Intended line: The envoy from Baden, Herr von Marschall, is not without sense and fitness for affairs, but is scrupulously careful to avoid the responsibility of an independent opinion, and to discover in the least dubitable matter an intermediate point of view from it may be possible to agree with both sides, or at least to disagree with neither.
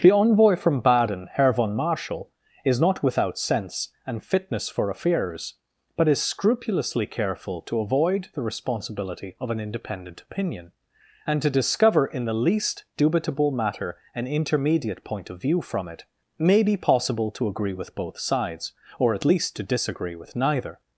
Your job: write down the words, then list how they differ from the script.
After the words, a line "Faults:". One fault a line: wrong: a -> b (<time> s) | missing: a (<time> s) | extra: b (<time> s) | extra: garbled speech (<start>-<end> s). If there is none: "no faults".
The envoy from Baden, Herr von Marschall, is not without sense and fitness for affairs, but is scrupulously careful to avoid the responsibility of an independent opinion, and to discover in the least dubitable matter an intermediate point of view from it may be possible to agree with both sides, or at least to disagree with neither.
Faults:
no faults